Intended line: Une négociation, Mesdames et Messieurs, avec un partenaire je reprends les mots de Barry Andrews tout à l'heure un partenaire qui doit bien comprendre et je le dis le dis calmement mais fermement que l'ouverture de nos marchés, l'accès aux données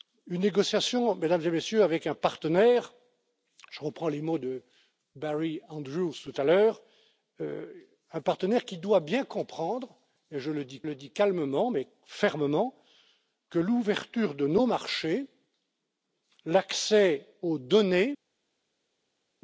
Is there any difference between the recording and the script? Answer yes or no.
no